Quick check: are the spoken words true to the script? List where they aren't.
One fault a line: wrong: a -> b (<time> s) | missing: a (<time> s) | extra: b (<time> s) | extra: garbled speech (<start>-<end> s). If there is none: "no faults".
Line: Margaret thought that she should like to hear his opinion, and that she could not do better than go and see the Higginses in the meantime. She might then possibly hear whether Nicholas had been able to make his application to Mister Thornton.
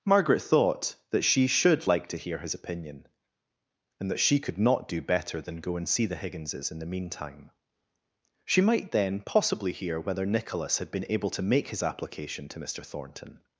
no faults